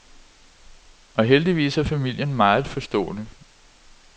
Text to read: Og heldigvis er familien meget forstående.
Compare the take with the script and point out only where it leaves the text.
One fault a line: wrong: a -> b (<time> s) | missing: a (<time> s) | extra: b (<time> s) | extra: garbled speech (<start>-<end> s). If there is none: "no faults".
no faults